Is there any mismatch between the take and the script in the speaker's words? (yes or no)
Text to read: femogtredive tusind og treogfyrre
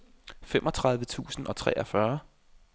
no